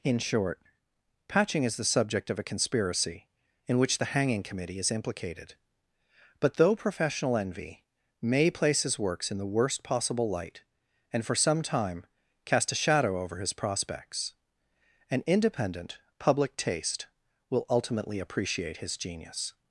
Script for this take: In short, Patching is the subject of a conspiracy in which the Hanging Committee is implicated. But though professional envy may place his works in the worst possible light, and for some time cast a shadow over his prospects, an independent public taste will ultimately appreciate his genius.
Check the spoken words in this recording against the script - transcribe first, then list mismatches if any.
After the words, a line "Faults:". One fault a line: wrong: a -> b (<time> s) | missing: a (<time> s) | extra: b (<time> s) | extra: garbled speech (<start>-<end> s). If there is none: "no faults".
In short, Patching is the subject of a conspiracy in which the Hanging Committee is implicated. But though professional envy may place his works in the worst possible light, and for some time cast a shadow over his prospects, an independent public taste will ultimately appreciate his genius.
Faults:
no faults